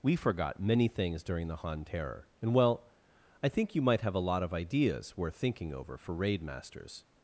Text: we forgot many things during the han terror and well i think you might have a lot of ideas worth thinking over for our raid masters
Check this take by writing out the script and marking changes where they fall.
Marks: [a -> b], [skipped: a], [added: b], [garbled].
we forgot many things during the han terror and well i think you might have a lot of ideas worth thinking over for [skipped: our] raid masters